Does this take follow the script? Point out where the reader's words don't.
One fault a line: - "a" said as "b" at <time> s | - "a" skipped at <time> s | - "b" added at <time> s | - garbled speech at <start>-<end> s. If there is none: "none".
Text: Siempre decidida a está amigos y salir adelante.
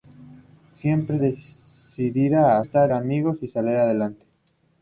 none